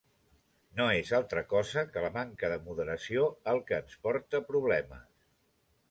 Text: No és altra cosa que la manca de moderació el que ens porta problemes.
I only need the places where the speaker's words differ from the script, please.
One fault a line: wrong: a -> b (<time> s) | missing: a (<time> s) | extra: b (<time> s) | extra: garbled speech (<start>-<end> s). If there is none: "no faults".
no faults